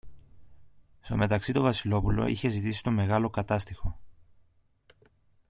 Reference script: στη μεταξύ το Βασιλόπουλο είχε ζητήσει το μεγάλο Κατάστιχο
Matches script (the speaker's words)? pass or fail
fail